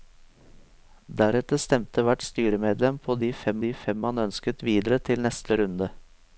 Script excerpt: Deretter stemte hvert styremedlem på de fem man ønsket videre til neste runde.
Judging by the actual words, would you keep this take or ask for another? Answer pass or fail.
fail